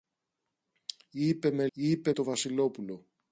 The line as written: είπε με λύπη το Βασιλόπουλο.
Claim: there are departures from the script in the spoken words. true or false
true